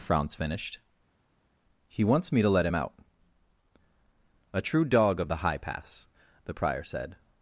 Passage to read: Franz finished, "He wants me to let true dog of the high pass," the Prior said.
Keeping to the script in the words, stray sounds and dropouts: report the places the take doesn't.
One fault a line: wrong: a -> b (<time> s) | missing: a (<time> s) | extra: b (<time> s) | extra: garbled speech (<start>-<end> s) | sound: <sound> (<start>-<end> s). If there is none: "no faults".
extra: him out A (2.6 s)